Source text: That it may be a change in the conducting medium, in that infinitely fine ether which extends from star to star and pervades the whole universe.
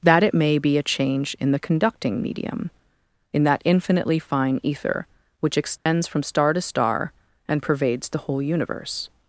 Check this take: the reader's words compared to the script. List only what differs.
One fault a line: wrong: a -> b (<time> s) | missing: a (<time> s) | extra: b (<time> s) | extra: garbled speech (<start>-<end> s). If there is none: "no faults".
no faults